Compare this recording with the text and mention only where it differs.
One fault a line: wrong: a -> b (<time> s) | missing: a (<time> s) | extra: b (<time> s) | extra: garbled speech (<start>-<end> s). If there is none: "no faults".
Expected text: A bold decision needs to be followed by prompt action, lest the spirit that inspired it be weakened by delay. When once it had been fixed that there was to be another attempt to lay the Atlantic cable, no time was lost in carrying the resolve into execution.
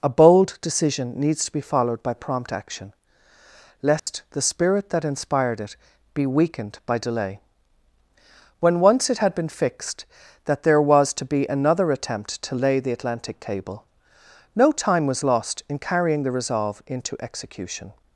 no faults